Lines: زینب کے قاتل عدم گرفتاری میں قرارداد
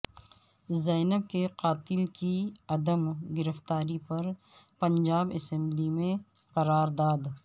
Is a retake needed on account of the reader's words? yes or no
yes